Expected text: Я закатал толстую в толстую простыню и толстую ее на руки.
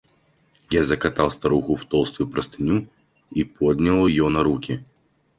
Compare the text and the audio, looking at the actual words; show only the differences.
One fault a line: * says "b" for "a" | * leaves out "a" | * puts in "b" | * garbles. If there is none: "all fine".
* says "старуху" for "толстую"
* says "поднял" for "толстую"